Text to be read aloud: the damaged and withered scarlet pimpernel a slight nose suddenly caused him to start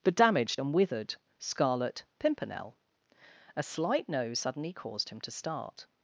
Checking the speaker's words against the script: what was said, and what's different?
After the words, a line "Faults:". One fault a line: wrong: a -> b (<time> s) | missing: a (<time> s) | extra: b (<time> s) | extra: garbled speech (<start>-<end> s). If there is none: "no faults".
the damaged and withered scarlet pimpernel a slight nose suddenly caused him to start
Faults:
no faults